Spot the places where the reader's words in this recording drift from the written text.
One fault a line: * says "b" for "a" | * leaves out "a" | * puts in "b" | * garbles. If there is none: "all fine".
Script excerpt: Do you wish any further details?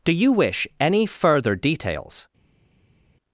all fine